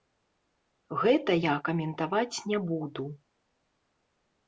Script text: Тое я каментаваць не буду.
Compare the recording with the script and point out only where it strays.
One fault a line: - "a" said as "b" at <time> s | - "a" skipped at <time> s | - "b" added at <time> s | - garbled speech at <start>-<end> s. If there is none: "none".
- "Тое" said as "Гэта" at 1.0 s